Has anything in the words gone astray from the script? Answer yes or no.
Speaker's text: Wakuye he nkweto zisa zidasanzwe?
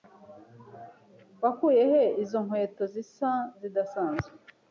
yes